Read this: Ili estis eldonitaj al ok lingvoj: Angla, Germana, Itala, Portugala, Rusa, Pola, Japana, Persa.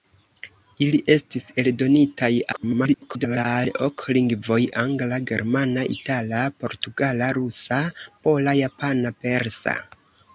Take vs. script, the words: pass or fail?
fail